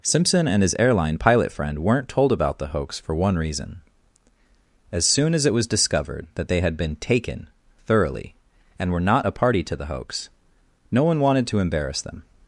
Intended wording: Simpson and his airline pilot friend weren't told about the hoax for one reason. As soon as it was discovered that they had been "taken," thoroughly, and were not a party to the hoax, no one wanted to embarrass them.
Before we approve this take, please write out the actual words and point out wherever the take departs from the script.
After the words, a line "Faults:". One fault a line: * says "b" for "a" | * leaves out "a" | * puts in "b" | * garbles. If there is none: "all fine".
Simpson and his airline pilot friend weren't told about the hoax for one reason. As soon as it was discovered that they had been "taken," thoroughly, and were not a party to the hoax, no one wanted to embarrass them.
Faults:
all fine